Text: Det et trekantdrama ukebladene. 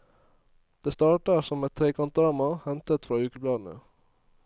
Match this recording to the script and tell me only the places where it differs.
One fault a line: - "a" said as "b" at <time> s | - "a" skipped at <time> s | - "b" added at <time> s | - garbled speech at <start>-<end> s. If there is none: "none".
- "starter som" added at 0.9 s
- "hentet fra" added at 2.6 s